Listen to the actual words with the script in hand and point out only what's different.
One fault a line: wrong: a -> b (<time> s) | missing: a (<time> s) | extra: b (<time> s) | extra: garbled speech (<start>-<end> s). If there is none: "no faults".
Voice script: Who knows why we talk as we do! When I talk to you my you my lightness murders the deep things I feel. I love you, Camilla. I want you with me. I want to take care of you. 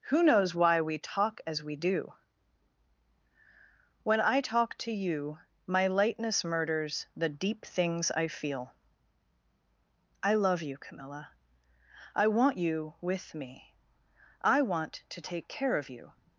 missing: you my (5.8 s)